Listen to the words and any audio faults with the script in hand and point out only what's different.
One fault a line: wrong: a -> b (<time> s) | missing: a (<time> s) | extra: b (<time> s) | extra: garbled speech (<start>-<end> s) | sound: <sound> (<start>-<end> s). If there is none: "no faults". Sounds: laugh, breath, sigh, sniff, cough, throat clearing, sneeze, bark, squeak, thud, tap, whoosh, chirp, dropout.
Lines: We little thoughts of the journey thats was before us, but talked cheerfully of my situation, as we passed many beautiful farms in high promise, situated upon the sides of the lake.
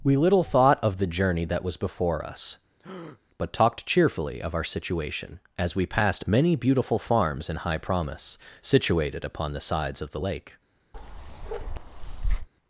wrong: thoughts -> thought (0.4 s)
wrong: thats -> that (1.4 s)
sound: breath (2.8-3.2 s)
wrong: my -> our (4.5 s)
sound: bark (10.9-12.5 s)